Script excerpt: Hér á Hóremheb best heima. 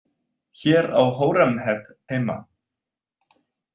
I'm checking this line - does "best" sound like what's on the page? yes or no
no